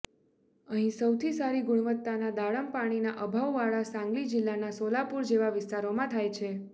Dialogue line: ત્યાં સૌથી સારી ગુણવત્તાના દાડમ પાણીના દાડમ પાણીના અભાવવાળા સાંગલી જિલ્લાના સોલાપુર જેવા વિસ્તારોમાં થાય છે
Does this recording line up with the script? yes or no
no